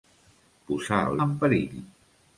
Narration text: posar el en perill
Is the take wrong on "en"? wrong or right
right